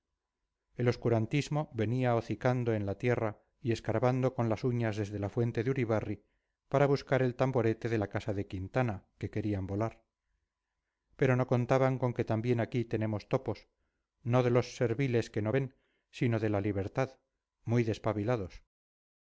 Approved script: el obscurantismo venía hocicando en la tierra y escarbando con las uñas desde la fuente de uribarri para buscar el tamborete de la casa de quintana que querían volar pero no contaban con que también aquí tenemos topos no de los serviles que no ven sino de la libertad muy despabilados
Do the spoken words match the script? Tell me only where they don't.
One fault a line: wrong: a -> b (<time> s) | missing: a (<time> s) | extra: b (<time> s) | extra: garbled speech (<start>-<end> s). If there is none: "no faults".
no faults